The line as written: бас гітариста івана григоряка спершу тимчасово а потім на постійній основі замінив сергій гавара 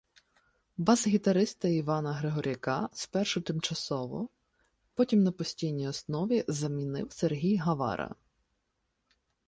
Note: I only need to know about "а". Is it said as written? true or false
false